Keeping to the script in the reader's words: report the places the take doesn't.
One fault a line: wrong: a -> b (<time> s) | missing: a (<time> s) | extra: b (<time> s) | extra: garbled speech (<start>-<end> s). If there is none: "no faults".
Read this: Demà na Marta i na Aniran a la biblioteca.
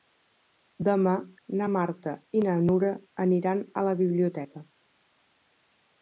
extra: Nura (2.7 s)